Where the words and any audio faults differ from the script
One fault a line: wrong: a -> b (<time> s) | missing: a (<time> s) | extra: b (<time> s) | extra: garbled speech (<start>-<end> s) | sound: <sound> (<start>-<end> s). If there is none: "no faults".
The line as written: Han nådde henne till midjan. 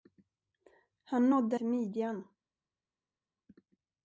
missing: henne (1.6 s)